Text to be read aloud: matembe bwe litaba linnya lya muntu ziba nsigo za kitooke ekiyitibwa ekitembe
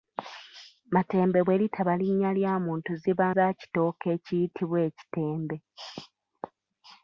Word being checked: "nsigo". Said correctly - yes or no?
no